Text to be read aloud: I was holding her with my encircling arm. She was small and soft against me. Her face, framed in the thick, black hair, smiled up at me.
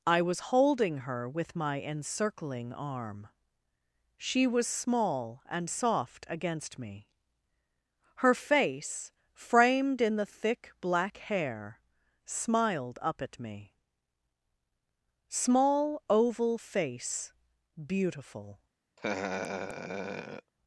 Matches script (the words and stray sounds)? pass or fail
fail